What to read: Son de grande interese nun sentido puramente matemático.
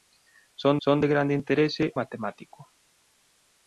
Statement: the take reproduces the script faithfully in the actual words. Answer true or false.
false